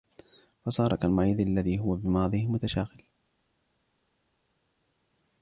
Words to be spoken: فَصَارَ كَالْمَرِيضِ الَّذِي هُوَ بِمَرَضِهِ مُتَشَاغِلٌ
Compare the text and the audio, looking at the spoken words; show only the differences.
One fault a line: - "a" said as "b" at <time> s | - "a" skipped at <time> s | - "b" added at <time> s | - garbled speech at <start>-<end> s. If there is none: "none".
none